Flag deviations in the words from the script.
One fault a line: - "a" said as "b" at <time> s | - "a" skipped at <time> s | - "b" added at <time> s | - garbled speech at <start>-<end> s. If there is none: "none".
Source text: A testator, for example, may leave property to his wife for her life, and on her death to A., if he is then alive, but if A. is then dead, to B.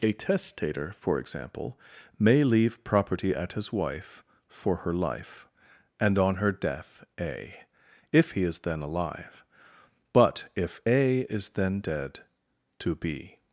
- "to" said as "at" at 3.4 s
- "to" skipped at 7.0 s